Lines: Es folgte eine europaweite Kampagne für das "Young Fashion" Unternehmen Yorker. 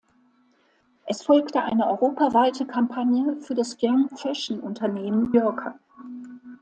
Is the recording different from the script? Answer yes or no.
no